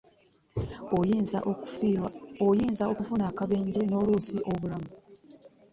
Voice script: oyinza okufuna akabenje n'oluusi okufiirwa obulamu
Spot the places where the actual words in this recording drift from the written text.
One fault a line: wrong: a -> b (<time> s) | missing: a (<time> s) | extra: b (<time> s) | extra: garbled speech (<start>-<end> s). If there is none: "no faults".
missing: okufiirwa (4.4 s)